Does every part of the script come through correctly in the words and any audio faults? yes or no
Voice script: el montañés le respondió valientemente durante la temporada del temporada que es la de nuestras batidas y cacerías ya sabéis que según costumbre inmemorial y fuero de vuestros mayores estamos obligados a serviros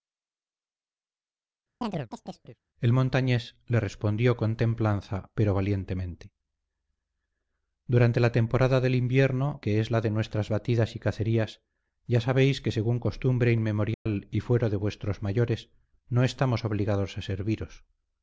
no